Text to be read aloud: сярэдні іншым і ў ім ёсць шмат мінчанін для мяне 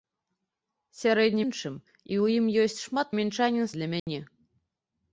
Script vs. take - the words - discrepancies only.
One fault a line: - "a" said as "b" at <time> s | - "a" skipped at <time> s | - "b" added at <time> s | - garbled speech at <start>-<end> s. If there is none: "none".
none